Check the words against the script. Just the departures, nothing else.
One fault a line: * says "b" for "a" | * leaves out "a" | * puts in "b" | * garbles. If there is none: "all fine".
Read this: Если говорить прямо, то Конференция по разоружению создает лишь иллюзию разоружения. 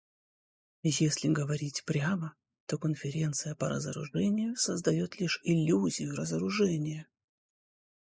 all fine